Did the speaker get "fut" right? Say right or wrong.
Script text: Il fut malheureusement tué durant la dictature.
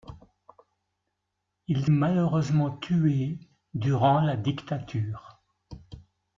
wrong